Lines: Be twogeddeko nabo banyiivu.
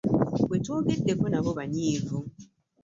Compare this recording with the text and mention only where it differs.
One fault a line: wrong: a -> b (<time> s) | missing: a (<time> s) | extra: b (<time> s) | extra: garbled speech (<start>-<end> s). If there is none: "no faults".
no faults